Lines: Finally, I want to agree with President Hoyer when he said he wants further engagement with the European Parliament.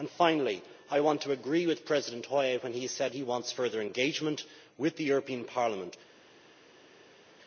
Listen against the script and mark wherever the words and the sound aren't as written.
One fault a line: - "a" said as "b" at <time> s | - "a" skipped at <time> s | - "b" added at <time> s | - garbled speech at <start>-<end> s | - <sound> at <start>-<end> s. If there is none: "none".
none